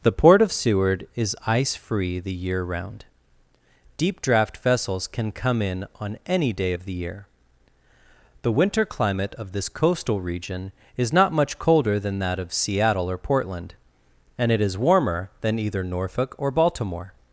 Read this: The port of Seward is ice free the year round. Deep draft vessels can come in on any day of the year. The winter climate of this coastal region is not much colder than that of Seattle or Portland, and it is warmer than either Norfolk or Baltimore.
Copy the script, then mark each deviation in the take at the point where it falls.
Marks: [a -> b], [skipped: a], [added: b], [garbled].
The port of Seward is ice free the year round. Deep draft vessels can come in on any day of the year. The winter climate of this coastal region is not much colder than that of Seattle or Portland, and it is warmer than either Norfolk or Baltimore.